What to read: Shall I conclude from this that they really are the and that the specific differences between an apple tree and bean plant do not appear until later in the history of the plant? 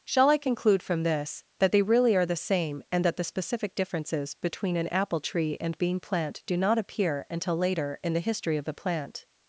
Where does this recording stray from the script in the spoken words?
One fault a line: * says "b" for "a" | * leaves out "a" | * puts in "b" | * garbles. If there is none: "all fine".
* puts in "same"